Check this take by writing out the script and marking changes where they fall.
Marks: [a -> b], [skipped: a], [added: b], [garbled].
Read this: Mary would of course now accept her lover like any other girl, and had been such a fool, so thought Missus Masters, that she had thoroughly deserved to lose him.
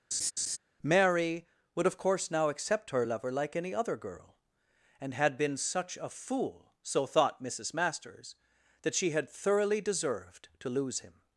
Mary would of course now accept her lover like any other girl, and had been such a fool, so thought Missus Masters, that she had thoroughly deserved to lose him.